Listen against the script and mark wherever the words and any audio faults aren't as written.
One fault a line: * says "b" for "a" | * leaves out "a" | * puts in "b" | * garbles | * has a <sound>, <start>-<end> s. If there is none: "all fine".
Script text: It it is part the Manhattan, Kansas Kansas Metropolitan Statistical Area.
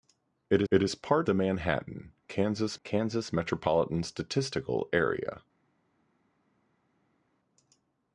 all fine